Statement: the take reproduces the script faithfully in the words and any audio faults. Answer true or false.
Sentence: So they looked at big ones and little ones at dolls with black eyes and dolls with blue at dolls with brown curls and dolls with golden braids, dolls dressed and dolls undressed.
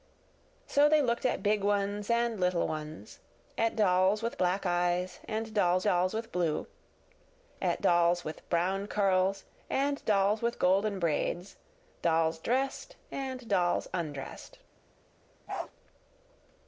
false